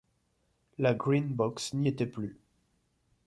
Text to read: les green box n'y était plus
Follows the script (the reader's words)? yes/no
no